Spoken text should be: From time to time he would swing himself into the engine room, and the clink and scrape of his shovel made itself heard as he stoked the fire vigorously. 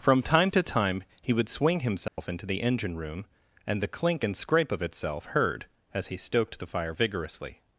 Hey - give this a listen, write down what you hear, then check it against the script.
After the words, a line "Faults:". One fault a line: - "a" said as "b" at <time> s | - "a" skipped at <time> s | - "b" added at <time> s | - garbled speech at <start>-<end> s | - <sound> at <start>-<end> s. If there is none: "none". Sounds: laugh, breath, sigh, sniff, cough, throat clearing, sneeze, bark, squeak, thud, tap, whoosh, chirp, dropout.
From time to time he would swing himself into the engine room, and the clink and scrape of itself heard as he stoked the fire vigorously.
Faults:
- dropout at 2.1-2.2 s
- "his shovel made" skipped at 4.8 s